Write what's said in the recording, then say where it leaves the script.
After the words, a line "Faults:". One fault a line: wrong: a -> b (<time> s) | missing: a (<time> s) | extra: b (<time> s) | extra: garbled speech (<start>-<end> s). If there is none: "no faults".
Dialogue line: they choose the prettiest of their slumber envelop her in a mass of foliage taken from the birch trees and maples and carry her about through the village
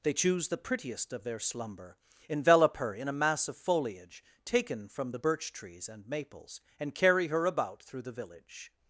they choose the prettiest of their slumber envelop her in a mass of foliage taken from the birch trees and maples and carry her about through the village
Faults:
no faults